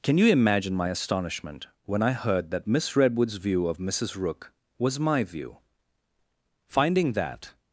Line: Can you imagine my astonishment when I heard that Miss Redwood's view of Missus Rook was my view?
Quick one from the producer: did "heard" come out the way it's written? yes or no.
yes